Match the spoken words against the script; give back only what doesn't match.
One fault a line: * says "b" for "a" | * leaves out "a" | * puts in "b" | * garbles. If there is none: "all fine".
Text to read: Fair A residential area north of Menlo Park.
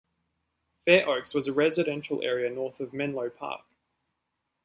* puts in "Oaks was"